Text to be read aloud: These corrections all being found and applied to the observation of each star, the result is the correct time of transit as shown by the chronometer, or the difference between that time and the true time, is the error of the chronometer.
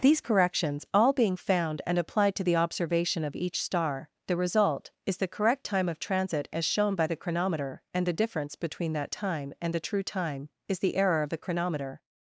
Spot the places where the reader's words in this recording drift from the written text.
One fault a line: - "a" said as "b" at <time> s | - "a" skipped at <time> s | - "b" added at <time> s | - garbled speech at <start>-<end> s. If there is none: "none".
- "or" said as "and" at 7.9 s